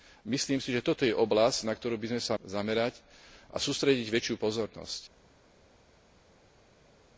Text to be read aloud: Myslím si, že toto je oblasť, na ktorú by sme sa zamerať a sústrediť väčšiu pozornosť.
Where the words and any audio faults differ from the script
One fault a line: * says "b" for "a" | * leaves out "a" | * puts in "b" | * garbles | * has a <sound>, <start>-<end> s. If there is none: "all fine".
all fine